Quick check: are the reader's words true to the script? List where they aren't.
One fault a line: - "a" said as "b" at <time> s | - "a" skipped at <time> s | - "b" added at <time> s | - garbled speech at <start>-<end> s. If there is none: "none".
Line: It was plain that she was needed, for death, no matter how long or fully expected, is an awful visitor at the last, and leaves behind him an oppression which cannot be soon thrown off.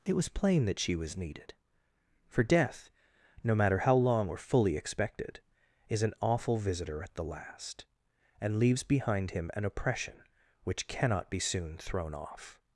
none